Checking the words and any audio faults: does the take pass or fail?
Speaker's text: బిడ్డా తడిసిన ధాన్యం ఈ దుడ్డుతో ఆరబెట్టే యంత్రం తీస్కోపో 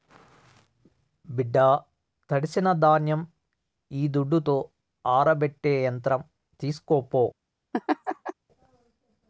fail